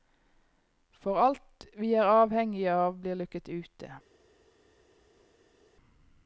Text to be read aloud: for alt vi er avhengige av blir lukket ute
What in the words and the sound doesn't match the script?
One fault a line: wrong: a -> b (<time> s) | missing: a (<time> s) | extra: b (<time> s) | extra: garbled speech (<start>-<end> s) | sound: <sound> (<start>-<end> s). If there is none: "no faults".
no faults